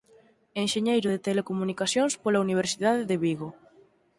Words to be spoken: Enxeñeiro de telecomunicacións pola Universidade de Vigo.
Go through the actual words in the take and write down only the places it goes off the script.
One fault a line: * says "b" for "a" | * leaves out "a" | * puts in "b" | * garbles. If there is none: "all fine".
all fine